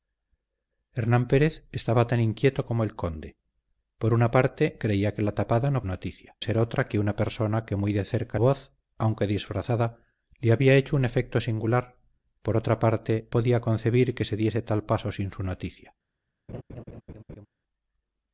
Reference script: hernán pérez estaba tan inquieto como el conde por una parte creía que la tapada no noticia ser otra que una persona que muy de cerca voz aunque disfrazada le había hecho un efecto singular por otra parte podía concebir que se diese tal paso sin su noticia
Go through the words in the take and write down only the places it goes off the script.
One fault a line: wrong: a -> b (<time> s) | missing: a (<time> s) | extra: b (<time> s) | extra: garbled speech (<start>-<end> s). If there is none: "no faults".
no faults